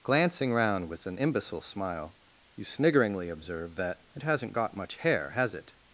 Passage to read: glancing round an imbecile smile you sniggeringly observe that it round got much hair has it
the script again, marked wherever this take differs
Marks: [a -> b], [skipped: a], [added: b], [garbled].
glancing round [added: with] an imbecile smile you sniggeringly observe that it [round -> hasn't] got much hair has it